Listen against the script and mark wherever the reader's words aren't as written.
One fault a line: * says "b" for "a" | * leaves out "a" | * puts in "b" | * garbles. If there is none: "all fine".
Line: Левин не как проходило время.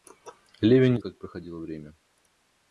all fine